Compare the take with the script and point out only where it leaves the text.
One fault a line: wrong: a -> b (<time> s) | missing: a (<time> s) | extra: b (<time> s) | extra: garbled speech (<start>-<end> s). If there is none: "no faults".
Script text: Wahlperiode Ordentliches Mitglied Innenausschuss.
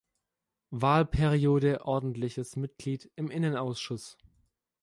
extra: im (3.2 s)